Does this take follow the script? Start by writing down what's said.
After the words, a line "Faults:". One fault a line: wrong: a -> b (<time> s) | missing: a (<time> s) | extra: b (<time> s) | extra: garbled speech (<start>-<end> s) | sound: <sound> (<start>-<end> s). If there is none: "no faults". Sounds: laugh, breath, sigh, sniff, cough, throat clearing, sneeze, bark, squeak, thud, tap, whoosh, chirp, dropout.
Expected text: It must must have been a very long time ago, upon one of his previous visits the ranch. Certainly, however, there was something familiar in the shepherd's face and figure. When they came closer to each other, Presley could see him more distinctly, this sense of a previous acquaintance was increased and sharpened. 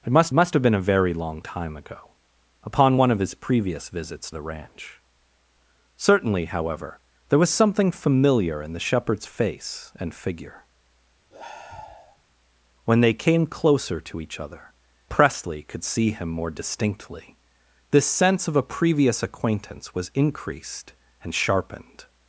It must must have been a very long time ago, upon one of his previous visits the ranch. Certainly, however, there was something familiar in the shepherd's face and figure. When they came closer to each other, Presley could see him more distinctly, this sense of a previous acquaintance was increased and sharpened.
Faults:
sound: sigh (11.3-12.2 s)